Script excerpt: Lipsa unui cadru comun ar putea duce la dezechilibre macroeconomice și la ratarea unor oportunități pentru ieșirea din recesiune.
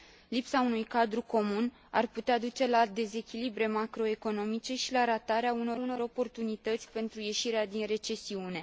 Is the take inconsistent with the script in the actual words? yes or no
yes